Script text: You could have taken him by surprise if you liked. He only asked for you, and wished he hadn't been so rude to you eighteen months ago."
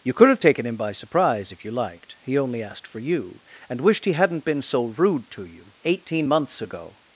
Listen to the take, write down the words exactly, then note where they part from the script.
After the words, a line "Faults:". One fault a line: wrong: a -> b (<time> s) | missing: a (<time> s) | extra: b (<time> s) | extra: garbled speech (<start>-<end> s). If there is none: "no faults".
You could have taken him by surprise if you liked. He only asked for you, and wished he hadn't been so rude to you eighteen months ago."
Faults:
no faults